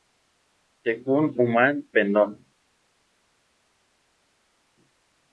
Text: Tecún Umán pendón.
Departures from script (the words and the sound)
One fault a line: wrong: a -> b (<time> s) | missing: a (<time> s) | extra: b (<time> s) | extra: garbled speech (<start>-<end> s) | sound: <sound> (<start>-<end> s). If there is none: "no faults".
no faults